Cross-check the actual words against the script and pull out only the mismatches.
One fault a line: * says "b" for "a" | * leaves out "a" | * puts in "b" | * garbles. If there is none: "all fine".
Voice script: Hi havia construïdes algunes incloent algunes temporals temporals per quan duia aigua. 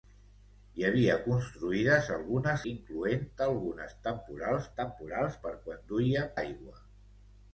all fine